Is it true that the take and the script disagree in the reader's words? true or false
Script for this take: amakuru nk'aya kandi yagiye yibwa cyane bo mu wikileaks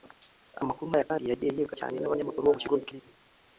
true